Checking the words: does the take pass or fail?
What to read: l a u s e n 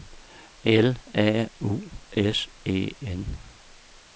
pass